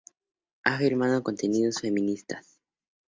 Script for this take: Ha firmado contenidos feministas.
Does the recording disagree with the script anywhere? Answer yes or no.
no